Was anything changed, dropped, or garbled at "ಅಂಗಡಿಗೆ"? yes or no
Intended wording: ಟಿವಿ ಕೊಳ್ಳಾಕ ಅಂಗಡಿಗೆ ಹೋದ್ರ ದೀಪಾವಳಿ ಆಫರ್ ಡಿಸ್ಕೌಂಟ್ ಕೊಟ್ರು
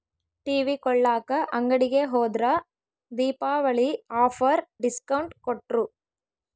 no